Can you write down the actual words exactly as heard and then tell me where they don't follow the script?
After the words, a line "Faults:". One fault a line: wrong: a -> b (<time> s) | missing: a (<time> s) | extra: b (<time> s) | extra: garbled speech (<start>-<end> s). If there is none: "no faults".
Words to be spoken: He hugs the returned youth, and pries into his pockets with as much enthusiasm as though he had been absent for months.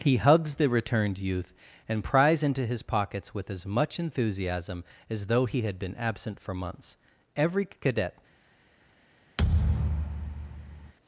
He hugs the returned youth, and pries into his pockets with as much enthusiasm as though he had been absent for months. Every cadet
Faults:
extra: Every cadet (7.3 s)